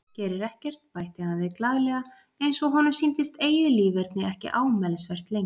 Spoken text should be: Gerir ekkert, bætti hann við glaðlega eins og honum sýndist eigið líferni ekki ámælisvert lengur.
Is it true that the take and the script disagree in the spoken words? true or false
false